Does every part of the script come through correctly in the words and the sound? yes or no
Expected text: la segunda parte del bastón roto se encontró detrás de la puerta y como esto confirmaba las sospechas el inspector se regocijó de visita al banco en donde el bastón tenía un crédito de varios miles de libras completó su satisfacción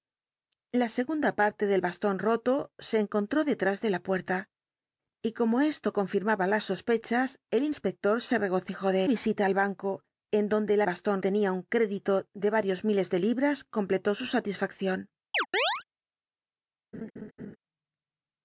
no